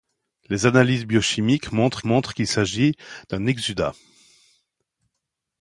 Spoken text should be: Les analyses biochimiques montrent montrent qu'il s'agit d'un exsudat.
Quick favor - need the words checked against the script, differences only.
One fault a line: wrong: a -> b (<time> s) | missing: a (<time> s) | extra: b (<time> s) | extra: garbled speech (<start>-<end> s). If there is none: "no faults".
no faults